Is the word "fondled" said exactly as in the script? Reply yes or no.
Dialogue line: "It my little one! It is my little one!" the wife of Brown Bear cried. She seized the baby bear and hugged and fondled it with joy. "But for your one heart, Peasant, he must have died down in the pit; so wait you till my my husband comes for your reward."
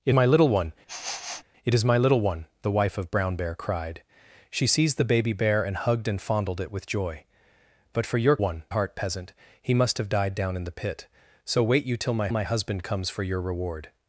yes